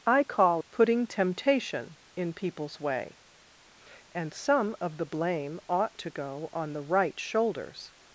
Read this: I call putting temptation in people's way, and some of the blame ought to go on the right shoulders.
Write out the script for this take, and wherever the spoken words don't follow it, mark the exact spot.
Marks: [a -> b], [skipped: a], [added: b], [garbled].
I call putting temptation in people's way, and some of the blame ought to go on the right shoulders.